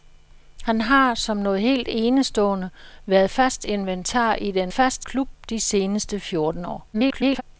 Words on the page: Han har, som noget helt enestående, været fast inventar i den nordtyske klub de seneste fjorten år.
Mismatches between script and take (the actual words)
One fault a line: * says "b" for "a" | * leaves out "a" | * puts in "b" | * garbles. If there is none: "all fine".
* says "fast" for "nordtyske"
* garbles